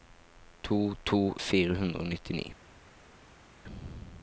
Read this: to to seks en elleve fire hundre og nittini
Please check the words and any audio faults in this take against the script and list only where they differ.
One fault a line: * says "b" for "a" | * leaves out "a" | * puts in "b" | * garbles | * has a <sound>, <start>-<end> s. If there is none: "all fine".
* leaves out "seks en elleve"